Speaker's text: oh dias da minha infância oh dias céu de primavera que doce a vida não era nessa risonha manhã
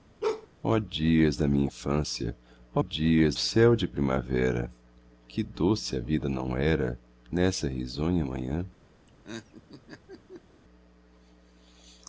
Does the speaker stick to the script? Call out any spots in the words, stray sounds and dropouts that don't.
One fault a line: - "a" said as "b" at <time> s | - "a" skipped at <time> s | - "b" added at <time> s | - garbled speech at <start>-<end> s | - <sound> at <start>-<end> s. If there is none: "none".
- bark at 0.2-0.5 s
- laugh at 9.1-10.6 s